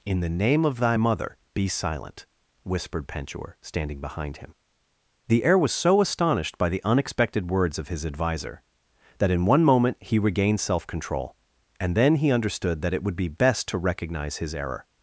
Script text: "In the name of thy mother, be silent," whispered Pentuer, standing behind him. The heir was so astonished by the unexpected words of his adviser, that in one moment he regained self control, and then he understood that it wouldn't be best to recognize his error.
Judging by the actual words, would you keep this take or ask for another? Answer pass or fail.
fail